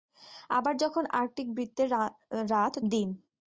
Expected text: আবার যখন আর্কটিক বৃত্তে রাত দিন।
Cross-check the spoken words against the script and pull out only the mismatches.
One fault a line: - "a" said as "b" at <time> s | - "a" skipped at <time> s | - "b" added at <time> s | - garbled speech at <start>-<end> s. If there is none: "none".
none